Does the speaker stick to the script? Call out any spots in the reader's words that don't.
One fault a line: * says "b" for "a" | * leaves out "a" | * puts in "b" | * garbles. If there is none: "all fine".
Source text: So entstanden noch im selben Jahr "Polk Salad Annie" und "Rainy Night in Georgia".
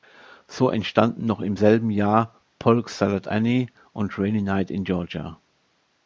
all fine